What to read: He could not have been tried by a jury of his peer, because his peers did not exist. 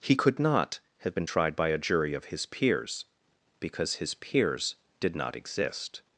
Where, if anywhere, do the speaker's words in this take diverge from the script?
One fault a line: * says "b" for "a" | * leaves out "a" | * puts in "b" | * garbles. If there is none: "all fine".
* says "peers" for "peer"